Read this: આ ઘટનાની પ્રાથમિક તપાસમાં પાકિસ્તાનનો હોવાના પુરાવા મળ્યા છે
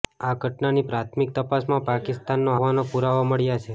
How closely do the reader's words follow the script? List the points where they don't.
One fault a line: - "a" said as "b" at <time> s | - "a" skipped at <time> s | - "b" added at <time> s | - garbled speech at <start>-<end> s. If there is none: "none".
none